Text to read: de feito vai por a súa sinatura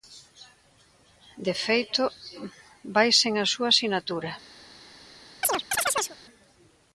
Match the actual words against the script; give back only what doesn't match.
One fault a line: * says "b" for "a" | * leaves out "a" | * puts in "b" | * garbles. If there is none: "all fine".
* says "sen" for "por"